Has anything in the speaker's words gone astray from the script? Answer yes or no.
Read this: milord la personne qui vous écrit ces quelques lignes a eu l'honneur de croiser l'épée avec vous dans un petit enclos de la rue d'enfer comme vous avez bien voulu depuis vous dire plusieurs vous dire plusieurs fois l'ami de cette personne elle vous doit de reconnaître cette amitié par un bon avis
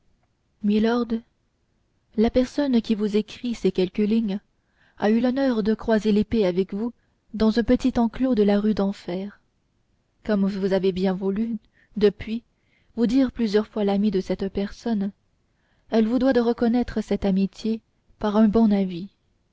yes